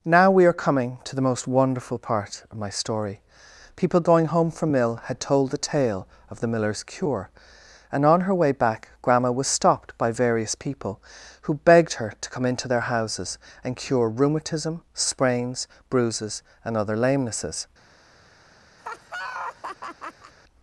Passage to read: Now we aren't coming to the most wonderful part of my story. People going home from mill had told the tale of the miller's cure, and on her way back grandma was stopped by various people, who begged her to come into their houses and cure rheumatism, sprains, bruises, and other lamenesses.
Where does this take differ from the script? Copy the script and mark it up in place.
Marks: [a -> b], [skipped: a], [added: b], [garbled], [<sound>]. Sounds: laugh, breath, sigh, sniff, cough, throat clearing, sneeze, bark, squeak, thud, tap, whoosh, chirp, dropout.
Now we [aren't -> are] coming to the most wonderful part of my story. People going home from mill had told the tale of the miller's cure, and on her way back grandma was stopped by various people, who begged her to come into their houses and cure rheumatism, sprains, bruises, and other lamenesses. [laugh]